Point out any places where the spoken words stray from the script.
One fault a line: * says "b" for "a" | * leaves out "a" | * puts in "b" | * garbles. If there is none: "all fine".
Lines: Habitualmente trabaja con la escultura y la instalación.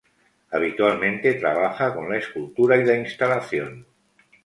all fine